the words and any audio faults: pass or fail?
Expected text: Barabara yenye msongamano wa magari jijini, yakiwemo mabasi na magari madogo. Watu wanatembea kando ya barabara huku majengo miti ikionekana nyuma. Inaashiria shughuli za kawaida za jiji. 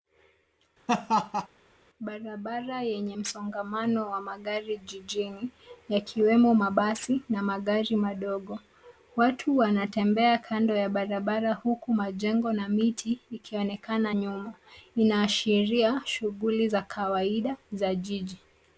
fail